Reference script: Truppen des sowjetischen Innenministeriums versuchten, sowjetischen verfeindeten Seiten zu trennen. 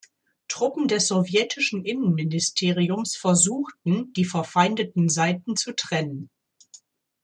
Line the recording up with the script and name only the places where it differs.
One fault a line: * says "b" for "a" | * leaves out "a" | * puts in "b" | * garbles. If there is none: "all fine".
* says "die" for "sowjetischen"